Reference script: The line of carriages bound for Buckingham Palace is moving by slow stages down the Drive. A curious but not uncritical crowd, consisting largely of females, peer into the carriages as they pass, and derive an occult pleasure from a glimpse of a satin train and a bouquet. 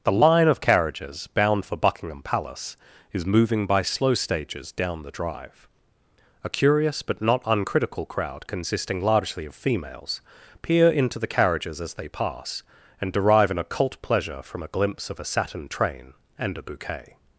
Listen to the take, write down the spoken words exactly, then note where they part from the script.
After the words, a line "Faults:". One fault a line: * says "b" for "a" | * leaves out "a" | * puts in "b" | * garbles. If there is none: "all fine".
The line of carriages bound for Buckingham Palace is moving by slow stages down the Drive. A curious but not uncritical crowd, consisting largely of females, peer into the carriages as they pass, and derive an occult pleasure from a glimpse of a satin train and a bouquet.
Faults:
all fine